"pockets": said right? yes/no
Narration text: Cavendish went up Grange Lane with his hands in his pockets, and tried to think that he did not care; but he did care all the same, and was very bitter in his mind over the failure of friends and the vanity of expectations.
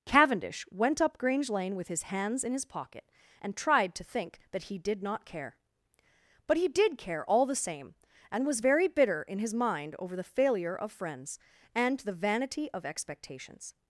no